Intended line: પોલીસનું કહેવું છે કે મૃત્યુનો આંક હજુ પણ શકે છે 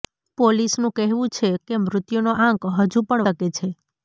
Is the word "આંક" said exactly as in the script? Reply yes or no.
yes